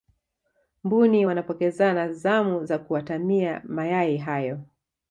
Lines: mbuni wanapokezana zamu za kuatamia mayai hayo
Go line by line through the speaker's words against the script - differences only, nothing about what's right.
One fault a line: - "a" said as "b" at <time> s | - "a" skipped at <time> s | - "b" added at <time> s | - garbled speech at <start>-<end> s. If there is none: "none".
none